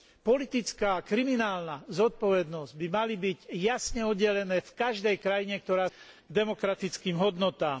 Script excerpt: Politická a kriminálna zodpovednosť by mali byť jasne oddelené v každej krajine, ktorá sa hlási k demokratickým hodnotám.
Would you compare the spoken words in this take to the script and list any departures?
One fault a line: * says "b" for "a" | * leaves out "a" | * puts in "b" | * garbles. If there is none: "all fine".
* leaves out "sa hlási"